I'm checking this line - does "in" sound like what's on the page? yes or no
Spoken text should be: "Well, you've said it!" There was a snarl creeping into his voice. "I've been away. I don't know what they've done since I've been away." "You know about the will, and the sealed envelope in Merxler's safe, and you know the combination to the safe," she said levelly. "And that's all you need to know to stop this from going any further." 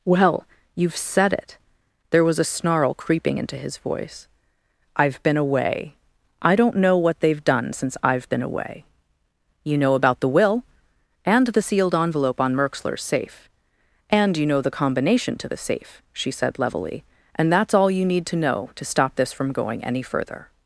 no